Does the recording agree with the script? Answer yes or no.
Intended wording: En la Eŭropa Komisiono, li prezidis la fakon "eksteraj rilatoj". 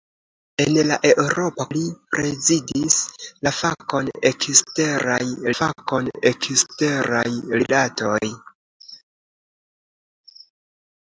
no